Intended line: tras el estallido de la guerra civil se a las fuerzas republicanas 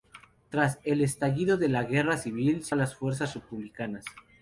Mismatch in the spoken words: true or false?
false